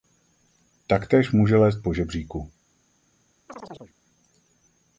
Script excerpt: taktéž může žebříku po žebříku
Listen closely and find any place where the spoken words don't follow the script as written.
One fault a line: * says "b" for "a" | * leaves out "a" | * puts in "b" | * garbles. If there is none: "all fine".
* says "lézt" for "žebříku"